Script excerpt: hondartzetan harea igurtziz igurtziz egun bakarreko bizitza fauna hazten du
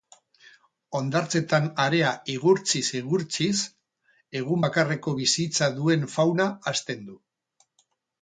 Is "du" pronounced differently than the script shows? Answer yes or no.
no